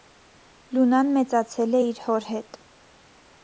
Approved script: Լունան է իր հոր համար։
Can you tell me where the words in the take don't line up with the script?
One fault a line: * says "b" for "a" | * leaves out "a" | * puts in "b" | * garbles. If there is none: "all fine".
* puts in "մեծացել"
* says "հետ" for "համար"